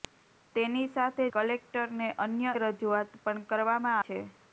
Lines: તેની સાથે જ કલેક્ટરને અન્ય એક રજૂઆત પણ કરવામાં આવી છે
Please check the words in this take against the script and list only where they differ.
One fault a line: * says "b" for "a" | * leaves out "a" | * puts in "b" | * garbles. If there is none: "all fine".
* leaves out "જ"
* leaves out "એક"
* leaves out "આવી"